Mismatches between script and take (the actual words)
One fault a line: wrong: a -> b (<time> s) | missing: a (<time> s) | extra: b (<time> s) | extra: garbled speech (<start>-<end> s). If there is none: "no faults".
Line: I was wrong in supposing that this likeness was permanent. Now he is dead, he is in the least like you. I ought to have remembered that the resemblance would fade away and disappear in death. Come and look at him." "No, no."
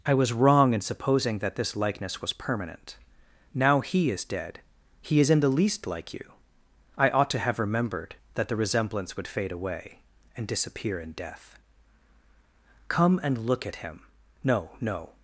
no faults